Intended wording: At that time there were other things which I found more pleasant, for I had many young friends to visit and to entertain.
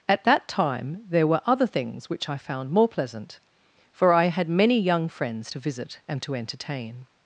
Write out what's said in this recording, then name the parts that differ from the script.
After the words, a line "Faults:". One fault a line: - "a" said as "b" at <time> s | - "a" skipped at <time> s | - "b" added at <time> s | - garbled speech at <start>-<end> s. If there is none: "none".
At that time there were other things which I found more pleasant, for I had many young friends to visit and to entertain.
Faults:
none